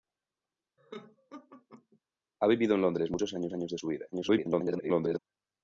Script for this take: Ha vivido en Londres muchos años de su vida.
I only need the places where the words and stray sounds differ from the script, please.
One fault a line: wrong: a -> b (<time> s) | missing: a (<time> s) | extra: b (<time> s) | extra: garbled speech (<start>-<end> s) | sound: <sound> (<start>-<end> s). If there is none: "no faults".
sound: laugh (0.8-2.0 s)
extra: años (3.5 s)
extra: garbled speech (4.1-5.2 s)